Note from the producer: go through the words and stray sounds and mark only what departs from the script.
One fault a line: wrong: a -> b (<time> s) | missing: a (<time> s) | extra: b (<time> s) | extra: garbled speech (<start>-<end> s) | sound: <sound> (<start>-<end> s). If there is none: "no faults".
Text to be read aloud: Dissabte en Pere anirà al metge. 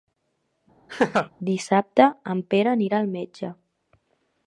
sound: laugh (0.9-1.3 s)